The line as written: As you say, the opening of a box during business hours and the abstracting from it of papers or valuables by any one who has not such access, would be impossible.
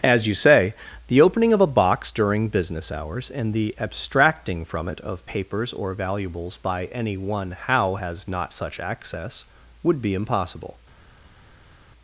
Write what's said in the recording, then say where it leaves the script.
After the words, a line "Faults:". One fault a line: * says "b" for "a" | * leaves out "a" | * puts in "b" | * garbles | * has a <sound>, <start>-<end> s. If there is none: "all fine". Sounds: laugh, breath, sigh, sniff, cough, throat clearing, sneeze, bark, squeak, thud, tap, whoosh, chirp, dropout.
As you say, the opening of a box during business hours and the abstracting from it of papers or valuables by any one how has not such access, would be impossible.
Faults:
* says "how" for "who"